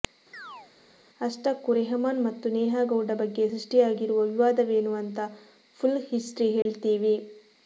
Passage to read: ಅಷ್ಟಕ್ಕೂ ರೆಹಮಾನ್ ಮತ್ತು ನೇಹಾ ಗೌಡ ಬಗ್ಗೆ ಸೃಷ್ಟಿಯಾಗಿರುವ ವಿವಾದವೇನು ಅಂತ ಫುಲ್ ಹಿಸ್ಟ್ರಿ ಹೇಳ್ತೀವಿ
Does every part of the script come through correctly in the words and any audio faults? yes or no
no